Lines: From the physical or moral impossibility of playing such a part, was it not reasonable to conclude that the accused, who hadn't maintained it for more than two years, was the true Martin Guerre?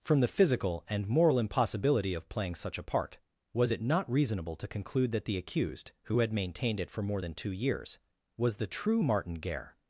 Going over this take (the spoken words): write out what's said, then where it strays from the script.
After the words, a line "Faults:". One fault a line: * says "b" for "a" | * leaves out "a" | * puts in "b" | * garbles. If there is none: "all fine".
From the physical and moral impossibility of playing such a part, was it not reasonable to conclude that the accused, who had maintained it for more than two years, was the true Martin Guerre?
Faults:
* says "and" for "or"
* says "had" for "hadn't"